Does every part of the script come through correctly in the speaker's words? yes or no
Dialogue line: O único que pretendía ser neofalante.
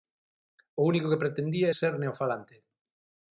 yes